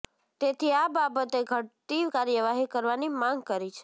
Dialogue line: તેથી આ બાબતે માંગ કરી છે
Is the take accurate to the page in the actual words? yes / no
no